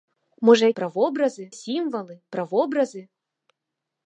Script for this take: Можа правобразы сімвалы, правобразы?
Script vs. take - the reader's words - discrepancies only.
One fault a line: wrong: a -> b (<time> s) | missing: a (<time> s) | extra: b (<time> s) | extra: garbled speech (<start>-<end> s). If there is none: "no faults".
no faults